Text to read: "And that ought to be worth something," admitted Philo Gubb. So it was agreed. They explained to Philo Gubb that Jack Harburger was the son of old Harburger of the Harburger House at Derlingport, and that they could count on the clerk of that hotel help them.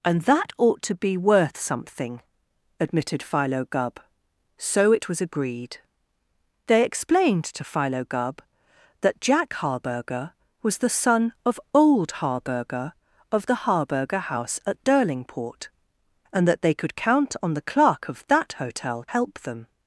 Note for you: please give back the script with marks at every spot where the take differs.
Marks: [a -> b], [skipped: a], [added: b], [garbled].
"And that ought to be worth something," admitted Philo Gubb. So it was agreed. They explained to Philo Gubb that Jack Harburger was the son of old Harburger of the Harburger House at Derlingport, and that they could count on the clerk of that hotel help them.